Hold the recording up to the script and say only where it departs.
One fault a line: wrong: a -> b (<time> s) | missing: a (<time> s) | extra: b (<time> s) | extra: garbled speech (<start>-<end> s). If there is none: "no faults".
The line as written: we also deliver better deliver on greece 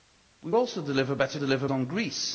no faults